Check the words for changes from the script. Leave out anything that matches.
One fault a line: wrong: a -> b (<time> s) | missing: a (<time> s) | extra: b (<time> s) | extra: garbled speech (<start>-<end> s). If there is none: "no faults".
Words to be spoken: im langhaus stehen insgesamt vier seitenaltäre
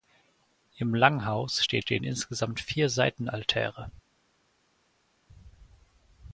extra: stehen (1.8 s)